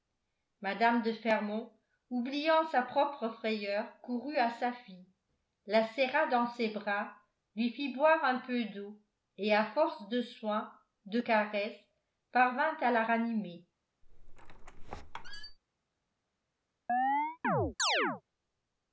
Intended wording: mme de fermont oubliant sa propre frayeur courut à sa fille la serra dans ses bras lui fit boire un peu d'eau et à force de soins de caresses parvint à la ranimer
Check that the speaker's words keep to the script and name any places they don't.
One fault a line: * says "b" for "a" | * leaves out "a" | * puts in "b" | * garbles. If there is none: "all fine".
all fine